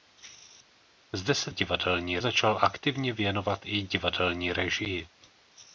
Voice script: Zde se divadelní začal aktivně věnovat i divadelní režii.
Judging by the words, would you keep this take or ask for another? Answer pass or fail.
pass